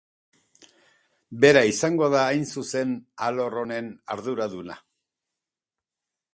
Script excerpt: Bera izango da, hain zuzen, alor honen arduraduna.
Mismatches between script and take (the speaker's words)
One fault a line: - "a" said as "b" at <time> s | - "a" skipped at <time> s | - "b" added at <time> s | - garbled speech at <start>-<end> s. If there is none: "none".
none